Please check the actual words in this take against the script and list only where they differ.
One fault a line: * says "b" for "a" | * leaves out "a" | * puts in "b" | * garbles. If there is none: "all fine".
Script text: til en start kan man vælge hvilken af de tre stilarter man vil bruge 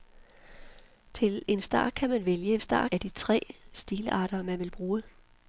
* says "start" for "hvilken"